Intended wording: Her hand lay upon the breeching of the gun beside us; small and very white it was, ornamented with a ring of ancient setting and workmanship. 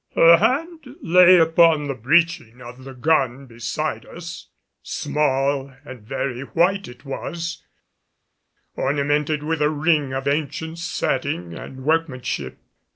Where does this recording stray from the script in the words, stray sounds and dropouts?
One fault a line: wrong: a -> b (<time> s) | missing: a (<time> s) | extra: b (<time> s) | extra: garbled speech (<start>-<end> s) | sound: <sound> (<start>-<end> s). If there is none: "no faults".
no faults